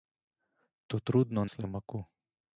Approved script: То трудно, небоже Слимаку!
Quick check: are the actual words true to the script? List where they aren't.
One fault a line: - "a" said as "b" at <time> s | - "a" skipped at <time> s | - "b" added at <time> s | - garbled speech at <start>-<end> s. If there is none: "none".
- "небоже" skipped at 1.4 s